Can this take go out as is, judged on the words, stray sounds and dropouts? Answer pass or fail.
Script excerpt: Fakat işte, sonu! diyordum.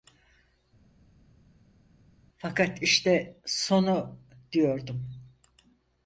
pass